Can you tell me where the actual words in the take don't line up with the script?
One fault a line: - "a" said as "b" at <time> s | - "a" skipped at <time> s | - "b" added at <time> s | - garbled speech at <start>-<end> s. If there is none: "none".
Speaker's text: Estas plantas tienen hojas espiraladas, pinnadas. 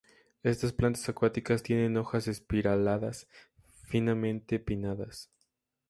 - "acuáticas" added at 1.1 s
- "finamente" added at 3.9 s